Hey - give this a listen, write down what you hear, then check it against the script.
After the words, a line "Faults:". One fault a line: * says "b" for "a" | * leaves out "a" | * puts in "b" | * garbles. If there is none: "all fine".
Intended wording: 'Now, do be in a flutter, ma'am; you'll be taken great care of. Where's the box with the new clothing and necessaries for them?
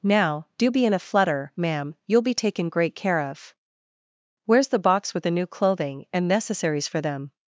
'Now, do be in a flutter, ma'am; you'll be taken great care of. Where's the box with the new clothing and necessaries for them?
Faults:
all fine